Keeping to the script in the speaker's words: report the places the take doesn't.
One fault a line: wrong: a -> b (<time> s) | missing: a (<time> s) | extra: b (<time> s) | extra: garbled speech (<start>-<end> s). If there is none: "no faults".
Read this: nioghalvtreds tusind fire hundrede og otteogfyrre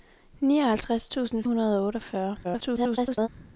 missing: fire (1.4 s)
extra: garbled speech (2.4-3.3 s)